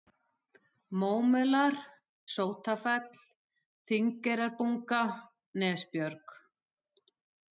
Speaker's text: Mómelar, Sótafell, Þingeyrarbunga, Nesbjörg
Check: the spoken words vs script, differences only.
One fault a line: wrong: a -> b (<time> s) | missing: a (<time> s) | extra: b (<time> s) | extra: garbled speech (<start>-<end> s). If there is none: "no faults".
no faults